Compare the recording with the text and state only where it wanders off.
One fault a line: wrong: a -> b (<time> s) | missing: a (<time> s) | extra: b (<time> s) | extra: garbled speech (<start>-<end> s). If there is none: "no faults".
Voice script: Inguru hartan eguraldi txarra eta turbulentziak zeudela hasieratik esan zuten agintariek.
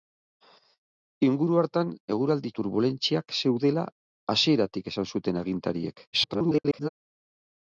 missing: txarra eta (2.5 s)
extra: garbled speech (6.1-6.9 s)